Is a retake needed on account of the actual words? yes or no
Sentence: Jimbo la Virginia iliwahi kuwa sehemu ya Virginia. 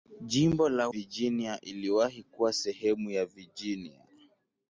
no